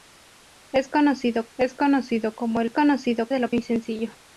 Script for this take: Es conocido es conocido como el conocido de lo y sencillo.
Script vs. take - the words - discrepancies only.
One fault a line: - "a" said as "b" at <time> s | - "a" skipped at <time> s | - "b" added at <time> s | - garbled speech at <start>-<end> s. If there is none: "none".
none